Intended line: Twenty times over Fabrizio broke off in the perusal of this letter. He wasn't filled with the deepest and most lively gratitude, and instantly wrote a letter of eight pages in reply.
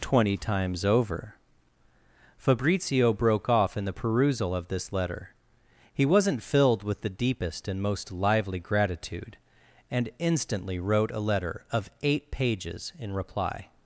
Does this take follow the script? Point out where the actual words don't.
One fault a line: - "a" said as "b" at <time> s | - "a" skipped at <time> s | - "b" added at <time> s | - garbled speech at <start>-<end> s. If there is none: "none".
none